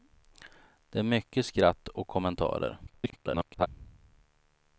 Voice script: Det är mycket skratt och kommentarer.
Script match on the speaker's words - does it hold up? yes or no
no